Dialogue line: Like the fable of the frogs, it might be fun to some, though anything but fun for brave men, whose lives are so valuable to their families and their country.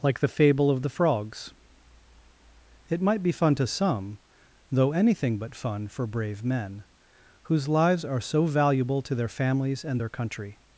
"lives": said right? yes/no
yes